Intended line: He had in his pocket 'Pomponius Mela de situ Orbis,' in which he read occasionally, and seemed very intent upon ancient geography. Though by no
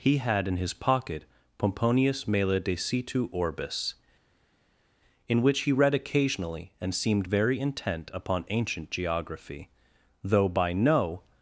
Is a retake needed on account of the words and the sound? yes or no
no